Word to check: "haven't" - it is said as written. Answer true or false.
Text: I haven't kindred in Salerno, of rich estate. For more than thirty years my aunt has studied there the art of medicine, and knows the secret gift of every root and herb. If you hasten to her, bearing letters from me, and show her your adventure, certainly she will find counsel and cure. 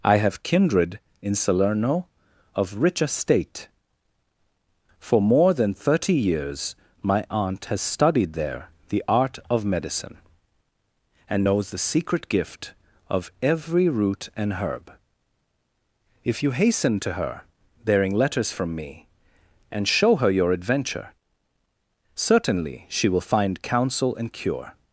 false